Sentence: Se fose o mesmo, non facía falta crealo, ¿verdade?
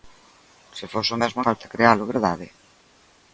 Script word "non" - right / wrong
wrong